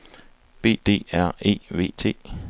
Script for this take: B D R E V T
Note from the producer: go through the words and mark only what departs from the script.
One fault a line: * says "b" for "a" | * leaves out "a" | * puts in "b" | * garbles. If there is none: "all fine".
all fine